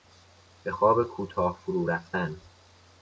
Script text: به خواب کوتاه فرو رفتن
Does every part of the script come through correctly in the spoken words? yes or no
yes